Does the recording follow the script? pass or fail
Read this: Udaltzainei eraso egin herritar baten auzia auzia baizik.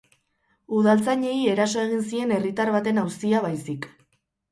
fail